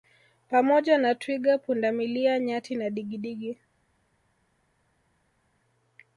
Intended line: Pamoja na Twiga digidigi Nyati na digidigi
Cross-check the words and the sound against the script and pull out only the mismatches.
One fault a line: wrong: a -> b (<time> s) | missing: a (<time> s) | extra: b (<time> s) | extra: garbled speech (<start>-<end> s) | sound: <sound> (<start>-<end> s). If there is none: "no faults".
wrong: digidigi -> pundamilia (1.6 s)